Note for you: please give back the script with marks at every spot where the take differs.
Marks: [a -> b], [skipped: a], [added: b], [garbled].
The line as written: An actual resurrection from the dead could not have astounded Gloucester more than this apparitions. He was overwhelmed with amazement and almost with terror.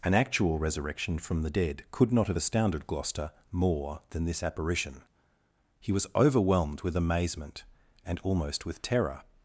An actual resurrection from the dead could not have astounded Gloucester more than this [apparitions. -> apparition] He was overwhelmed with amazement and almost with terror.